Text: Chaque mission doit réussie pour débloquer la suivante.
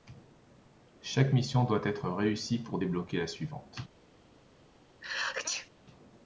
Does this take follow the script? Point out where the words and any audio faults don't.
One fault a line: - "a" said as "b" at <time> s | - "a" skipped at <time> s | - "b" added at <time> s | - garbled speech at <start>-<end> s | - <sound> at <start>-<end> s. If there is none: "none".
- "être" added at 1.8 s
- sneeze at 5.0-5.7 s